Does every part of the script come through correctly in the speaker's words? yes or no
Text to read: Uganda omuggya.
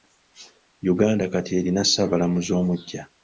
no